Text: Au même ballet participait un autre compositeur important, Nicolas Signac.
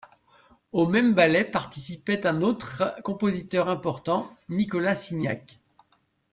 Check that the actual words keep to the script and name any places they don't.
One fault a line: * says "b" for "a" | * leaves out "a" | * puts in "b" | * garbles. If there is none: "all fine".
all fine